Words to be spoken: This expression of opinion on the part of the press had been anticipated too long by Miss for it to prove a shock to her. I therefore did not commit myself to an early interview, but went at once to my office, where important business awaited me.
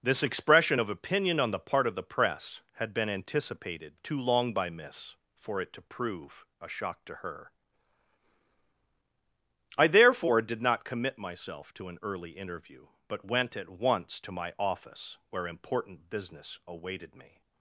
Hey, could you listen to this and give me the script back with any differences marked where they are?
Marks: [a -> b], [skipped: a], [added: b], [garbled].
This expression of opinion on the part of the press had been anticipated too long by Miss for it to prove a shock to her. I therefore did not commit myself to an early interview, but went at once to my office, where important business awaited me.